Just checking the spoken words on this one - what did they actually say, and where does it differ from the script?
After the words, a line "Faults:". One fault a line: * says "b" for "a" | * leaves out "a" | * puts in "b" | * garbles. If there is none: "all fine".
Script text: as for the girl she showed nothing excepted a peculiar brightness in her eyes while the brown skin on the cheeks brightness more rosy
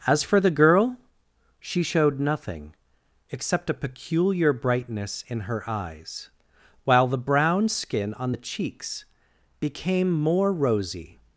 as for the girl she showed nothing except a peculiar brightness in her eyes while the brown skin on the cheeks became more rosy
Faults:
* says "except" for "excepted"
* says "became" for "brightness"